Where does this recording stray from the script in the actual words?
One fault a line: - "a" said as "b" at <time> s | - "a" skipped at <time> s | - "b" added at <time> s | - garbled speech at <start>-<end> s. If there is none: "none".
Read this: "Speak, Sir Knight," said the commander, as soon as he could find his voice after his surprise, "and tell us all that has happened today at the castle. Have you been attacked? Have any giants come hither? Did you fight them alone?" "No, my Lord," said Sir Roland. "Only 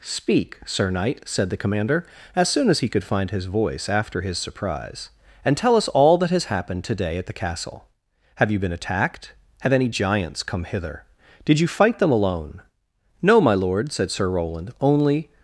none